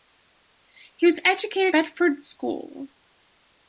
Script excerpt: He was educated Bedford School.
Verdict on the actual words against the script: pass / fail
pass